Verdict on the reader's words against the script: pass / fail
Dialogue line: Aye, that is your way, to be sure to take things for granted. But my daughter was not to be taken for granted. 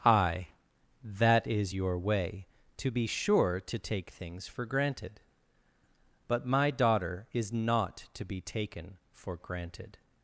fail